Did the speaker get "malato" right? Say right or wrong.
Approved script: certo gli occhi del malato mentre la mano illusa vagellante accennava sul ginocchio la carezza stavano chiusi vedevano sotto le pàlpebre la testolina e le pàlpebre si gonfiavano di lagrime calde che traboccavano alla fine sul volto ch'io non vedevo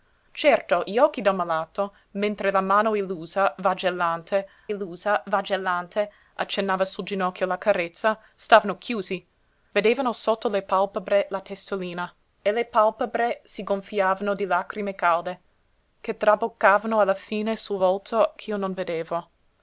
right